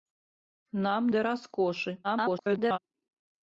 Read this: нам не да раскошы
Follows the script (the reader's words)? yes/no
no